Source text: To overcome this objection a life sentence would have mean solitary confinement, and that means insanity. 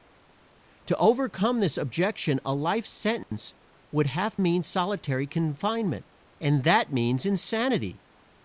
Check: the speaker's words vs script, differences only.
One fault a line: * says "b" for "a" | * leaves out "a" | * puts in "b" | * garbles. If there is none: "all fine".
all fine